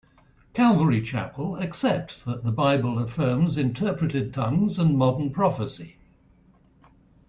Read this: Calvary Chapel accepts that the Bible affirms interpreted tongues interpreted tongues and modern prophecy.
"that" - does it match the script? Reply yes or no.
yes